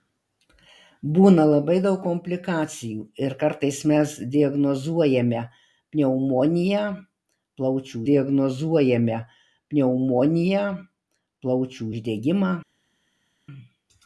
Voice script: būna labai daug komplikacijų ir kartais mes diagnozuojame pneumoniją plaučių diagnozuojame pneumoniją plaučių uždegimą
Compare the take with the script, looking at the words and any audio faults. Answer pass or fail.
pass